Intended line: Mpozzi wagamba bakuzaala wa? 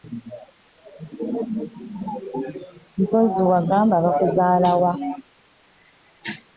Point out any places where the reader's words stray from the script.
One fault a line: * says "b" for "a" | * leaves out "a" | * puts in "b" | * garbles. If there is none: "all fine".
all fine